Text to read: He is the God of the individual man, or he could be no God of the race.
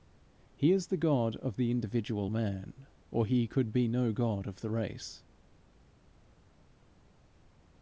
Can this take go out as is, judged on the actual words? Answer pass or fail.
pass